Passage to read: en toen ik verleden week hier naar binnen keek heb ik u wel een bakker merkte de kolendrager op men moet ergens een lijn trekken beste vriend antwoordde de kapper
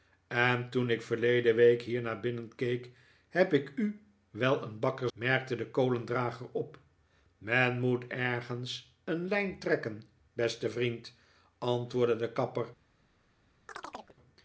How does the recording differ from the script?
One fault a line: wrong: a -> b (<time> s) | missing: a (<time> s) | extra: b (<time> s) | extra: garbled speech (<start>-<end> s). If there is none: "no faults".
no faults